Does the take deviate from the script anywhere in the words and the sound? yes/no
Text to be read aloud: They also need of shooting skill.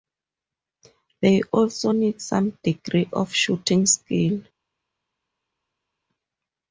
yes